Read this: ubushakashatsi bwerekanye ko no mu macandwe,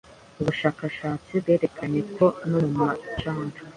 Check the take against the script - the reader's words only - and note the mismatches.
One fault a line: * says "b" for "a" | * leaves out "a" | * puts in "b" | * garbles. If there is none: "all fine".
all fine